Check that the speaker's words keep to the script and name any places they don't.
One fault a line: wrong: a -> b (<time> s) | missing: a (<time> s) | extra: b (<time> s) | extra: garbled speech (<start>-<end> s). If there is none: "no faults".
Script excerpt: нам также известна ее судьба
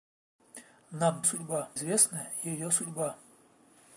wrong: также -> судьба (1.2 s)